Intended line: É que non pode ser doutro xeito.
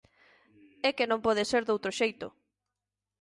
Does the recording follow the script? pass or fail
pass